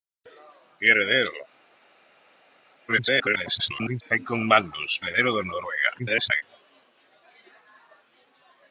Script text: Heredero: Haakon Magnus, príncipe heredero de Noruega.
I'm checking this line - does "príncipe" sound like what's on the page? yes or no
no